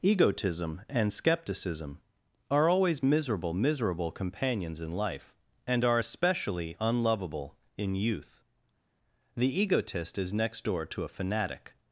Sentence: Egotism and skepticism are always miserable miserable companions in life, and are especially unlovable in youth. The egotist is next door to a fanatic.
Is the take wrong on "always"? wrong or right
right